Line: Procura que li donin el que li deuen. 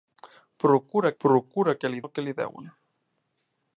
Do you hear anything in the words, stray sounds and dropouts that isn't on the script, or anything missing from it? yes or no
yes